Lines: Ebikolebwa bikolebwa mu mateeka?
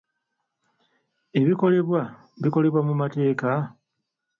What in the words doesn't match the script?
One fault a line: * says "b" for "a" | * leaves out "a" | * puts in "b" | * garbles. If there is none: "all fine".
all fine